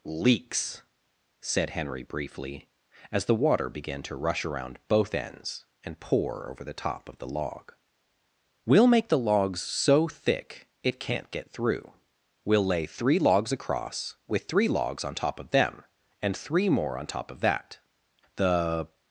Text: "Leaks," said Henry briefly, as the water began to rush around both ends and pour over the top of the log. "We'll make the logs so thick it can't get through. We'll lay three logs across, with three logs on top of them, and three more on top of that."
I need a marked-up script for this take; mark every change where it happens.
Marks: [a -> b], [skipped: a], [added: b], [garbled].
"Leaks," said Henry briefly, as the water began to rush around both ends and pour over the top of the log. "We'll make the logs so thick it can't get through. We'll lay three logs across, with three logs on top of them, and three more on top of that." [added: The]